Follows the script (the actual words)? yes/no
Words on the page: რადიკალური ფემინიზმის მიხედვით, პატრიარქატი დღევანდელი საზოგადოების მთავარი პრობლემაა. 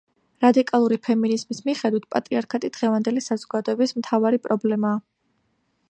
yes